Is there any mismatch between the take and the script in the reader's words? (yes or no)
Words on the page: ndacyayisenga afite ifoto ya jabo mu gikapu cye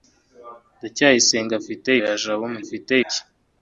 yes